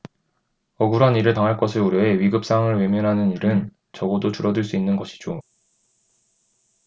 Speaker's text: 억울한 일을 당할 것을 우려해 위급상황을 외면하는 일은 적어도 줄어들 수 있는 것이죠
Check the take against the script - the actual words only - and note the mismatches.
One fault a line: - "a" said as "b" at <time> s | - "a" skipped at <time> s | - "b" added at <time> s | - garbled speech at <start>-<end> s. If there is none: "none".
none